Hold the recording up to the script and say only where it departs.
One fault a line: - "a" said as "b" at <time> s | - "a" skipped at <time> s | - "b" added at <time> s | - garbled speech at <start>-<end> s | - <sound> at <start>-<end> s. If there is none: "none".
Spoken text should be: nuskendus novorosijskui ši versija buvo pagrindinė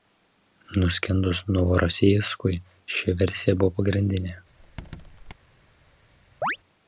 - squeak at 4.6-5.3 s
- chirp at 6.4-6.6 s